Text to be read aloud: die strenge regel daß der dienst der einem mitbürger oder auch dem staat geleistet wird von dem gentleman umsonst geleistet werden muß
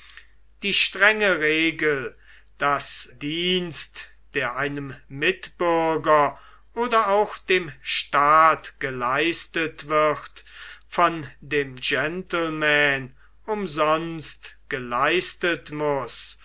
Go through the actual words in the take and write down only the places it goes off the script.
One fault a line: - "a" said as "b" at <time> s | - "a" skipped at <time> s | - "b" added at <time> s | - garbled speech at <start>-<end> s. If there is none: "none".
- "der" skipped at 3.1 s
- "werden" skipped at 15.7 s